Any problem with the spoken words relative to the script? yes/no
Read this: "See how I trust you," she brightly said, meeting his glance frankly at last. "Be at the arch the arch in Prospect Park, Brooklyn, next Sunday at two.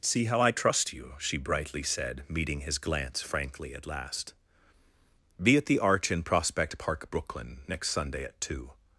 yes